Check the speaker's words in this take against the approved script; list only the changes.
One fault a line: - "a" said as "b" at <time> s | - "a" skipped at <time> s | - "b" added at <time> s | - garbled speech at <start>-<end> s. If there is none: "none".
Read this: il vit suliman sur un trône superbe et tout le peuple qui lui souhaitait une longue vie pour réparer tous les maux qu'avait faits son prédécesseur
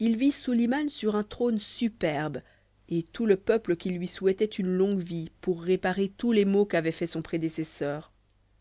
none